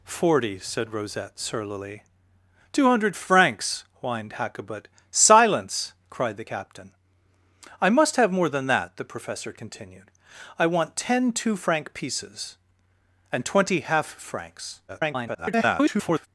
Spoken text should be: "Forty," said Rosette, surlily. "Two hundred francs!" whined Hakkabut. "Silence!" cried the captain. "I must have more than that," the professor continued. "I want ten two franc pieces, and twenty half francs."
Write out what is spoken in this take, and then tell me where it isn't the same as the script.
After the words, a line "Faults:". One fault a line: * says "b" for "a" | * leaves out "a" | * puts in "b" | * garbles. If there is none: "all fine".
"Forty," said Rosette, surlily. "Two hundred francs!" whined Hakkabut. "Silence!" cried the captain. "I must have more than that," the professor continued. "I want ten two franc pieces, and twenty half francs." [garbled]
Faults:
* garbles